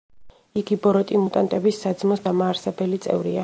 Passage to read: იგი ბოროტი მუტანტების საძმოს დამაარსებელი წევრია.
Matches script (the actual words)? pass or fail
pass